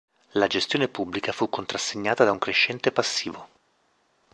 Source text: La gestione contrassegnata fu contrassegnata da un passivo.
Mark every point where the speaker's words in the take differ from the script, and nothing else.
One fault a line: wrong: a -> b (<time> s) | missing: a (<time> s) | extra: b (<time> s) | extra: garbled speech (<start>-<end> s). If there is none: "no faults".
wrong: contrassegnata -> pubblica (0.9 s)
extra: crescente (2.4 s)